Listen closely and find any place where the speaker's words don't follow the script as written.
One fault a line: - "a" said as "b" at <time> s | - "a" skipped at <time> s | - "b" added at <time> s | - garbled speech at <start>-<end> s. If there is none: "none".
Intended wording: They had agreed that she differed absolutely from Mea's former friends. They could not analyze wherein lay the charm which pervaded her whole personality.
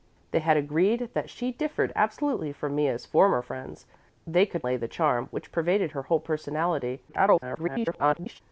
- "not analyze wherein" skipped at 4.7 s
- garbled speech at 7.1-8.4 s